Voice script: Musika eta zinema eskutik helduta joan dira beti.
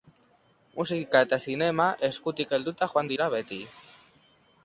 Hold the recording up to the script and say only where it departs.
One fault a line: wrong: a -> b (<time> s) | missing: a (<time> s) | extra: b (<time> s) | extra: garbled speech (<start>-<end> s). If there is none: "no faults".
no faults